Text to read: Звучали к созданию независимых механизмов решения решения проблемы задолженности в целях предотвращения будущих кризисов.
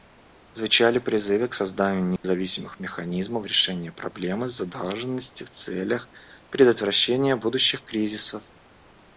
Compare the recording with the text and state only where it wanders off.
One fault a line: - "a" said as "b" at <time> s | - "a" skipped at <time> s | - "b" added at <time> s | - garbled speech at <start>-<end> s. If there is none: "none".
- "призывы" added at 1.0 s
- "решения" skipped at 3.9 s